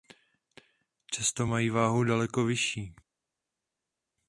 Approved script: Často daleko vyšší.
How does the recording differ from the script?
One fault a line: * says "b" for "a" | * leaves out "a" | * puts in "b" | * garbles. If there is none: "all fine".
* puts in "mají váhu"